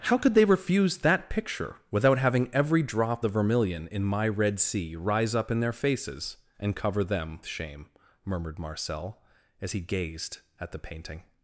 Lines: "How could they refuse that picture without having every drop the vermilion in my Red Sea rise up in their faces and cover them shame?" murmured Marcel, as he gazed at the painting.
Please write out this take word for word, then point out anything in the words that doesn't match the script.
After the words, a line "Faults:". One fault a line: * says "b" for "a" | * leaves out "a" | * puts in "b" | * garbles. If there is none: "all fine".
"How could they refuse that picture without having every drop the vermilion in my Red Sea rise up in their faces and cover them shame?" murmured Marcel, as he gazed at the painting.
Faults:
all fine